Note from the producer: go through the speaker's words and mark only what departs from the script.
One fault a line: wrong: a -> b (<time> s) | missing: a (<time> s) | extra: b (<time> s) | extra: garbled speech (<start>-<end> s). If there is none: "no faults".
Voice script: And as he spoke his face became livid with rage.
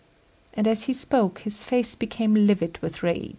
no faults